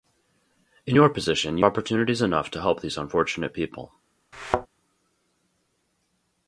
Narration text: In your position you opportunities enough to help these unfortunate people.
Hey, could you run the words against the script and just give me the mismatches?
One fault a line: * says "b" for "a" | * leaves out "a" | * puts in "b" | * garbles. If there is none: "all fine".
all fine